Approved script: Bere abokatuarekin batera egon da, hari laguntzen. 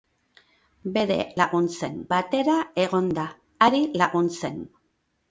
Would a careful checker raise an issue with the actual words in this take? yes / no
yes